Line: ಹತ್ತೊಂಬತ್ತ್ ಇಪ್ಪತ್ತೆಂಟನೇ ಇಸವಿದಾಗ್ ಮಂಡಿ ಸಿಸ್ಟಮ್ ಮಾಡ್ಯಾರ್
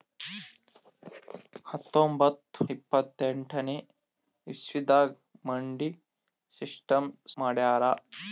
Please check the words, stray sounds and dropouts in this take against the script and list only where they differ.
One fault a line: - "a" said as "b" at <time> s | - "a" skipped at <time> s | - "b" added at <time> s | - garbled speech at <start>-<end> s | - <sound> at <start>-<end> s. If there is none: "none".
none